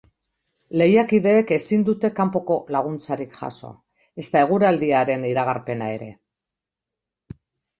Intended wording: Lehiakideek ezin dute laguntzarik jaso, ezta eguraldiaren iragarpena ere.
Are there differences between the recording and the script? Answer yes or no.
yes